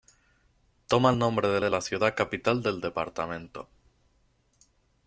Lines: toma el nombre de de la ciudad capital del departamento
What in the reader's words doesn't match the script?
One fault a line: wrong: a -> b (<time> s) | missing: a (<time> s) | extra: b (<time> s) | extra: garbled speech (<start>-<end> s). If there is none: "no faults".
no faults